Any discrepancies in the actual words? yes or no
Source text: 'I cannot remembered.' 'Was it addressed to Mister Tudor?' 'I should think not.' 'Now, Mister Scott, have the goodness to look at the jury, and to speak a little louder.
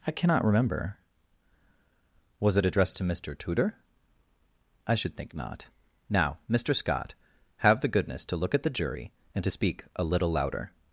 yes